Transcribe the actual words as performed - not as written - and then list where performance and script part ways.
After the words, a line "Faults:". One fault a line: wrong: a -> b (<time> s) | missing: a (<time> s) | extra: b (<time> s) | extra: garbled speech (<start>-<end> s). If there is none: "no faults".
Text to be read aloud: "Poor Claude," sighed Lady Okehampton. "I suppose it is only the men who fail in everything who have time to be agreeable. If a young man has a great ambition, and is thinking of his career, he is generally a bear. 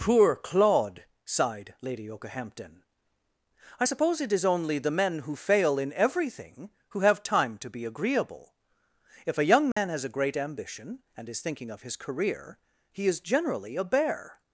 "Poor Claude," sighed Lady Okehampton. "I suppose it is only the men who fail in everything who have time to be agreeable. If a young man has a great ambition, and is thinking of his career, he is generally a bear.
Faults:
no faults